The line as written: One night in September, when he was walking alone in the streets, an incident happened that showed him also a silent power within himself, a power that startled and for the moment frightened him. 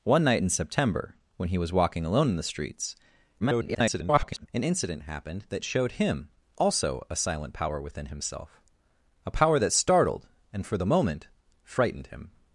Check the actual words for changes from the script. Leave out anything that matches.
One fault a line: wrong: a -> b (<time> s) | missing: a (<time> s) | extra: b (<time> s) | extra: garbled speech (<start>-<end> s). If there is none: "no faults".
extra: garbled speech (3.4-4.5 s)